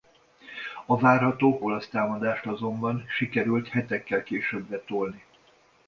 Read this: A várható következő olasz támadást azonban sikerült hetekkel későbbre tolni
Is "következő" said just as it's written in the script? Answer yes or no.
no